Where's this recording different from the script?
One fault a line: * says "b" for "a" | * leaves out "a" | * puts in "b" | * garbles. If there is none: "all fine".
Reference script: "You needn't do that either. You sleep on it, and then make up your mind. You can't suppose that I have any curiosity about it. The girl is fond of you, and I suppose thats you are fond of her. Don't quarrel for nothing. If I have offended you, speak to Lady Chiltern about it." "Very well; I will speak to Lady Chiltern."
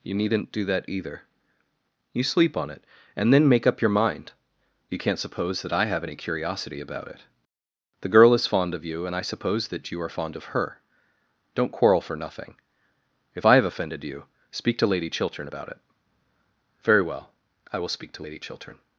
* says "that" for "thats"